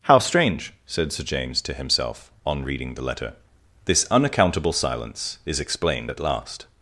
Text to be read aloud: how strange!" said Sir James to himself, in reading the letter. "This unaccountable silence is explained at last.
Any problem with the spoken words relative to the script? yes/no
yes